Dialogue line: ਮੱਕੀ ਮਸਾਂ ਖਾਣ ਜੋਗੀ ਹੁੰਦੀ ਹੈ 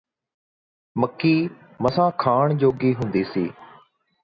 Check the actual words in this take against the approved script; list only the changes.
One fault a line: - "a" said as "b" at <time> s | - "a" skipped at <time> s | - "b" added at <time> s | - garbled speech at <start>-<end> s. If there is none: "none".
- "ਹੈ" said as "ਸੀ" at 3.2 s